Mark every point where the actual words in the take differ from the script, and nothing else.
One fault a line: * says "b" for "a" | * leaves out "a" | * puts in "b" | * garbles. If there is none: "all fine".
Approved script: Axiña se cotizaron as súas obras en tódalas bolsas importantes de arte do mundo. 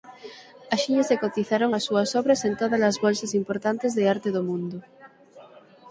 all fine